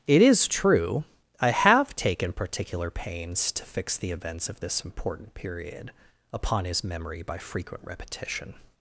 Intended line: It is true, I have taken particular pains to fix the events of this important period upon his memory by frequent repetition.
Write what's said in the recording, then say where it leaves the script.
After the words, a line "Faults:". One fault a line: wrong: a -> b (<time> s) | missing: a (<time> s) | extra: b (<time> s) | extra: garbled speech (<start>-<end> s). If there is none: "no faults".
It is true, I have taken particular pains to fix the events of this important period upon his memory by frequent repetition.
Faults:
no faults